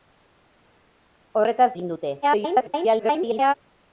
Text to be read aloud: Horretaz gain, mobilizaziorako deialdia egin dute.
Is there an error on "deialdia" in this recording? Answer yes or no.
yes